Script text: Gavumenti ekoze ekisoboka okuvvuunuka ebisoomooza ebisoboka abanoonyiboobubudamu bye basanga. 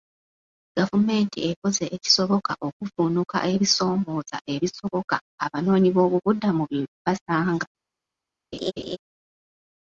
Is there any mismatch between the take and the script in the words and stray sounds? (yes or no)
yes